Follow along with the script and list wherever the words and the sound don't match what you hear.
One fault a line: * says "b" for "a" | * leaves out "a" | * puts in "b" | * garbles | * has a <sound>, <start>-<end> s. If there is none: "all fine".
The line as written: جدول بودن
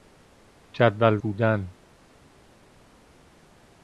all fine